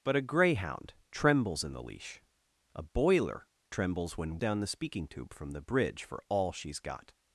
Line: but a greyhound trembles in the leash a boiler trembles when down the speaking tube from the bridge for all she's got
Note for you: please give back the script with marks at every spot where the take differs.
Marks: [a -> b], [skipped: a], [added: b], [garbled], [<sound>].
but a greyhound trembles in the leash a boiler trembles when down the speaking tube from the bridge for all she's got